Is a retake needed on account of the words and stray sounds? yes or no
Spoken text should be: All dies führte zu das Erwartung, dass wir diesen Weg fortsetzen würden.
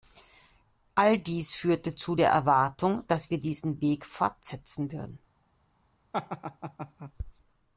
yes